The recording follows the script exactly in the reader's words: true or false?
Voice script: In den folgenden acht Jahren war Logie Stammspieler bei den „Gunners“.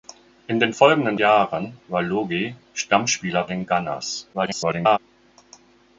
false